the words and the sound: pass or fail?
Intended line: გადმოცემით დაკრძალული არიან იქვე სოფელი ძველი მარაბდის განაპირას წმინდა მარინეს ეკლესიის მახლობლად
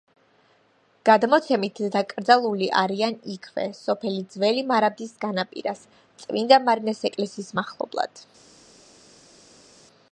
pass